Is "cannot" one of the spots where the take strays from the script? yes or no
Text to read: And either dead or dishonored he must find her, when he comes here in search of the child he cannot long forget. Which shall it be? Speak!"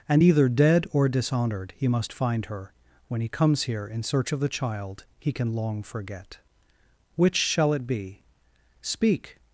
yes